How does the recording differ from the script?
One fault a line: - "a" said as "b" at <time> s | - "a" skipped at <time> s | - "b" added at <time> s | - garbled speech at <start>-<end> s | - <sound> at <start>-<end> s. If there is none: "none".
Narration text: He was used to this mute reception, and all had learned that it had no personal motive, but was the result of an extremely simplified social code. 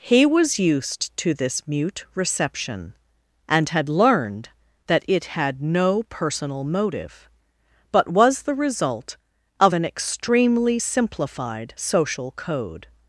- "all" skipped at 3.7 s